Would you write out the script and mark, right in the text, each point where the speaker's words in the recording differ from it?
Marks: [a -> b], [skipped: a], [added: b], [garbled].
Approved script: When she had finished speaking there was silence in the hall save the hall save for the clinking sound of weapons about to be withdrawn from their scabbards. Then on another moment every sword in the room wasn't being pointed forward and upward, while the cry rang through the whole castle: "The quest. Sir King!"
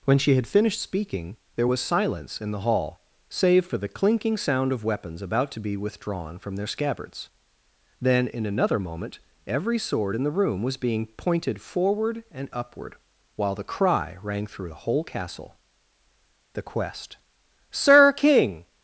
When she had finished speaking there was silence in the hall save [skipped: the hall save] for the clinking sound of weapons about to be withdrawn from their scabbards. Then [on -> in] another moment every sword in the room [wasn't -> was] being pointed forward and upward, while the cry rang through the whole castle: "The quest. Sir King!"